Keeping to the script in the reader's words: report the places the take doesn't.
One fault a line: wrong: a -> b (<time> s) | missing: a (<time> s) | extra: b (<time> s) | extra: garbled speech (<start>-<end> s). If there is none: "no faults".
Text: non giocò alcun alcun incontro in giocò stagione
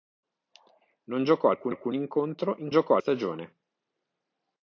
no faults